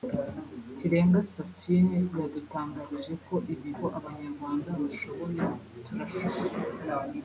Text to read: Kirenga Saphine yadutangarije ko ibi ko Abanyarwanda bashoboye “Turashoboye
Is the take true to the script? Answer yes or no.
yes